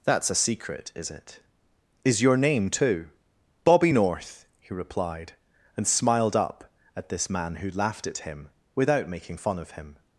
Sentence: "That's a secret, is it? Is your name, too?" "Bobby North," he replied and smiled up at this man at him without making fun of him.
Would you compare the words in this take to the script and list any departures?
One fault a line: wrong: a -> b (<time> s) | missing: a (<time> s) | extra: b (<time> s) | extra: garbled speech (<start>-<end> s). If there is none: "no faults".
extra: who laughed (7.5 s)